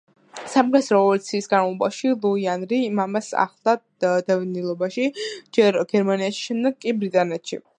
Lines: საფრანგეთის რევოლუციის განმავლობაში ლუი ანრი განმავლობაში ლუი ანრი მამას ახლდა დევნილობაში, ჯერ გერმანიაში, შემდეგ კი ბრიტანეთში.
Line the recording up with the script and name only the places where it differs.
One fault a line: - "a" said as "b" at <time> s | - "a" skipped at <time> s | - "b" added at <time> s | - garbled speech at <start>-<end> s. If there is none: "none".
- "განმავლობაში ლუი ანრი" skipped at 2.8 s